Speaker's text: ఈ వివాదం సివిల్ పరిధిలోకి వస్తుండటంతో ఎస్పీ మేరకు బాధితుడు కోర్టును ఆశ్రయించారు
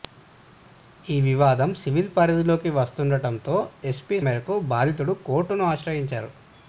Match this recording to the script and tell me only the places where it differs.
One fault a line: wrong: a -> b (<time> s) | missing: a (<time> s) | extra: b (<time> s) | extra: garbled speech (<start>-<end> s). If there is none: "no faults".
no faults